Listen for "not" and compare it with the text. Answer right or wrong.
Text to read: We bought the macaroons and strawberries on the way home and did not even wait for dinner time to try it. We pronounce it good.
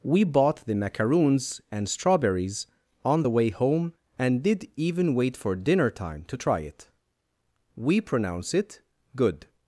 wrong